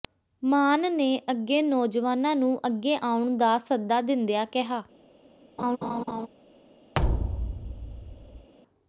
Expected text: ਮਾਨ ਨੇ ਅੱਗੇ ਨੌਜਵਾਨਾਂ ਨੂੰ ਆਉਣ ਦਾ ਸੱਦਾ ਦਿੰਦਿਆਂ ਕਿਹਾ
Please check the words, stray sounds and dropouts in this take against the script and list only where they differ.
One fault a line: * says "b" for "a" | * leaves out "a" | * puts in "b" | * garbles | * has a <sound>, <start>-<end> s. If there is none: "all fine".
* puts in "ਅੱਗੇ"
* has a laugh, 5.6-6.3 s
* has a thud, 6.9-8.5 s